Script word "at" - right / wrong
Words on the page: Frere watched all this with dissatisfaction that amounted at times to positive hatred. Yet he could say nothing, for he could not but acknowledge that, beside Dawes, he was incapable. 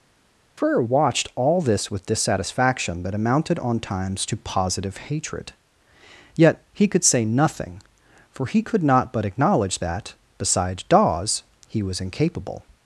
wrong